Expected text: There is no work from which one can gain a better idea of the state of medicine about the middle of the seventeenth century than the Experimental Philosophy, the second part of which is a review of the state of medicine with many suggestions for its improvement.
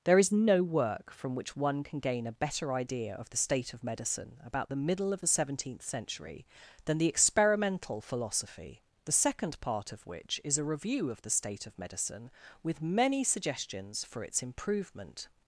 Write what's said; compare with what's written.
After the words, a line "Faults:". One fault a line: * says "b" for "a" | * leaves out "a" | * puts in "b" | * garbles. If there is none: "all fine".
There is no work from which one can gain a better idea of the state of medicine about the middle of the seventeenth century than the Experimental Philosophy, the second part of which is a review of the state of medicine with many suggestions for its improvement.
Faults:
all fine